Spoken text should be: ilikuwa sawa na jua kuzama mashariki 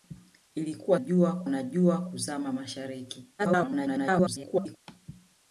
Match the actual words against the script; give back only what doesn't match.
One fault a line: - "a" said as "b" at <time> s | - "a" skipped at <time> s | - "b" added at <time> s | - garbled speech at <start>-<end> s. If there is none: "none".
- "sawa" said as "jua" at 1.0 s
- garbled speech at 3.4-4.8 s